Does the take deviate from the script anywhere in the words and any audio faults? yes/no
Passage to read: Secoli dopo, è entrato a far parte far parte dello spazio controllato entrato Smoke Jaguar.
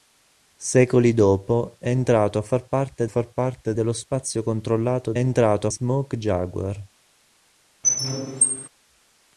yes